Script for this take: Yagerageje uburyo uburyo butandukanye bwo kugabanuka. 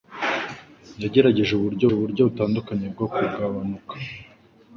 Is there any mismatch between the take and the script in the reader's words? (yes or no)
no